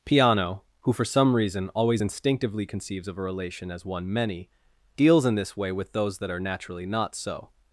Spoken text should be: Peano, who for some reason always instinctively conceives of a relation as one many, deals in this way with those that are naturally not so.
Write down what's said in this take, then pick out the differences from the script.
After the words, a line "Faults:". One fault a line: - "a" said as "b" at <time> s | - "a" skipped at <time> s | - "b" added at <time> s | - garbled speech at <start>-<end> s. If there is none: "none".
Peano, who for some reason always instinctively conceives of a relation as one many, deals in this way with those that are naturally not so.
Faults:
none